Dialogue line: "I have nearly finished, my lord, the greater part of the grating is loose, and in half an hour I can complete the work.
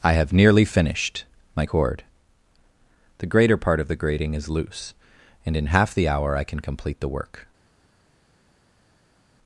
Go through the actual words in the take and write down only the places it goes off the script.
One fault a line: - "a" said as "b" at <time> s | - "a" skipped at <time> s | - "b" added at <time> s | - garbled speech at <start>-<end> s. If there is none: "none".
- "lord" said as "cord" at 1.6 s
- "an" said as "the" at 5.9 s